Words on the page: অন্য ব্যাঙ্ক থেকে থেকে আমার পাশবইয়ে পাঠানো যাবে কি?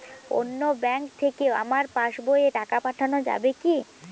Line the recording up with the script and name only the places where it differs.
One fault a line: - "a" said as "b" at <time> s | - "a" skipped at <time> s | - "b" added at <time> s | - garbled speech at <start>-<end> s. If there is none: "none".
- "থেকে" skipped at 1.4 s
- "টাকা" added at 2.6 s